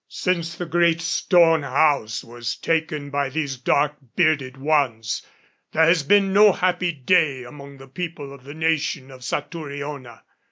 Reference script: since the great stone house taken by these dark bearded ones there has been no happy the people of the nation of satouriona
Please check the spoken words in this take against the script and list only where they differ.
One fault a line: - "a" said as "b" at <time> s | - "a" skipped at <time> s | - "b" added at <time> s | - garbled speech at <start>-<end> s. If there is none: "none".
- "was" added at 2.2 s
- "day among" added at 6.9 s